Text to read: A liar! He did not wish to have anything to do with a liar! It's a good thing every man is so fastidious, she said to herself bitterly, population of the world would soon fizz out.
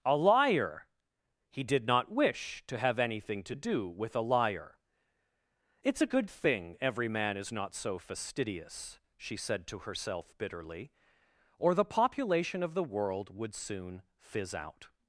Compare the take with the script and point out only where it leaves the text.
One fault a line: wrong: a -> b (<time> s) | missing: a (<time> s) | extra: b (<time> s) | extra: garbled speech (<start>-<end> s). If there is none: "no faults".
extra: not (7.5 s)
extra: or the (11.6 s)